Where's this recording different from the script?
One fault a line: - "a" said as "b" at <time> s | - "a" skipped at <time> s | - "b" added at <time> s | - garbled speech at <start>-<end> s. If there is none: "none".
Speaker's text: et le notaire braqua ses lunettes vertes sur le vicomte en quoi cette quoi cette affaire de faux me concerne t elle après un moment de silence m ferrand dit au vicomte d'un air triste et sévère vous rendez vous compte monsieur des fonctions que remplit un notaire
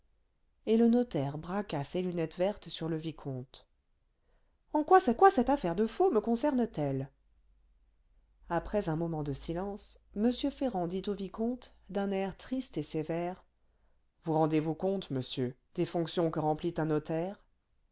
none